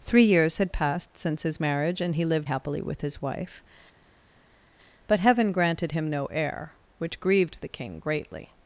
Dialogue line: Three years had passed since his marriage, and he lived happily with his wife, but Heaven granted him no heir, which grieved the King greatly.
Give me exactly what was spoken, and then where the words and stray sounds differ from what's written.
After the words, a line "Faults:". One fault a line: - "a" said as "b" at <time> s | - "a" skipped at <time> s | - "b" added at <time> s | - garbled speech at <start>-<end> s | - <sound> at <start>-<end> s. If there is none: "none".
Three years had passed since his marriage, and he lived happily with his wife, but Heaven granted him no heir, which grieved the King greatly.
Faults:
none